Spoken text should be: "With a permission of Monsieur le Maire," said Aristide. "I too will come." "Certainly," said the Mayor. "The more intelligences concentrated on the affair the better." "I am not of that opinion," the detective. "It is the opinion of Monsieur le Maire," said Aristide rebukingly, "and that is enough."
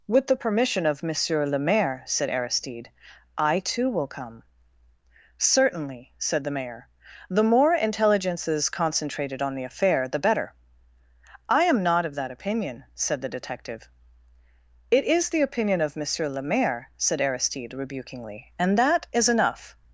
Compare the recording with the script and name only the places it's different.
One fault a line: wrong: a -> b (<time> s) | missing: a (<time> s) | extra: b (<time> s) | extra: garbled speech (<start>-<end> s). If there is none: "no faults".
wrong: a -> the (0.2 s)
extra: said (12.9 s)